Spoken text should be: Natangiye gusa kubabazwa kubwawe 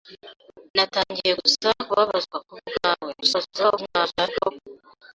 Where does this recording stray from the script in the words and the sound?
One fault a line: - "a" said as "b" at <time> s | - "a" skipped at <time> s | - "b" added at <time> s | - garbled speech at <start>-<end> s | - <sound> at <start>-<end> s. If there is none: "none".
- garbled speech at 3.2-4.5 s